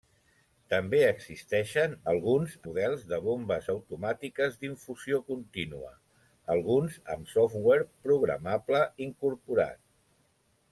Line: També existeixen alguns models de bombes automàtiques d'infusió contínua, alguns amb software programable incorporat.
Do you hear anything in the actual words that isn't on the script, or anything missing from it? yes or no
no